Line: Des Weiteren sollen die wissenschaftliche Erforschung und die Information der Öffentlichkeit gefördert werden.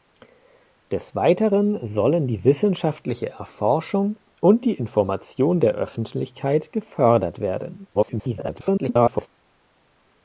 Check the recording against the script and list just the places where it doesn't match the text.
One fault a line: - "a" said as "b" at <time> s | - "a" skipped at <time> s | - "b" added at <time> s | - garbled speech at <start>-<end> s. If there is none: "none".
- garbled speech at 7.9-9.3 s